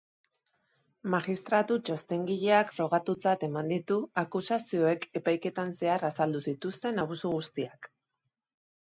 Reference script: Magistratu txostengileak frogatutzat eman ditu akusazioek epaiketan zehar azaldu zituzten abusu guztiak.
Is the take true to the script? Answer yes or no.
yes